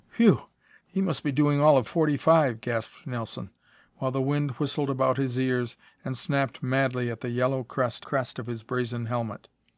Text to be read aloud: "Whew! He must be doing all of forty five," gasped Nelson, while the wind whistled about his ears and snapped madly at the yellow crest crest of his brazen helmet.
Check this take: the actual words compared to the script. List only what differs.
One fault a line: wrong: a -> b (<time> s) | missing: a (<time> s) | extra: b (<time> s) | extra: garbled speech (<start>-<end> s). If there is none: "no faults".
no faults